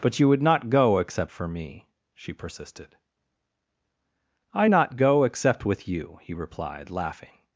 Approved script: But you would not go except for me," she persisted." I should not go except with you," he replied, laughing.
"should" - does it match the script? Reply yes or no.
no